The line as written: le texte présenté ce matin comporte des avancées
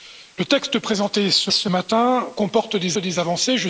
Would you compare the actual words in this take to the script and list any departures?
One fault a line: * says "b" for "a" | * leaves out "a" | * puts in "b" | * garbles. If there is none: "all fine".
* puts in "ce"
* puts in "des"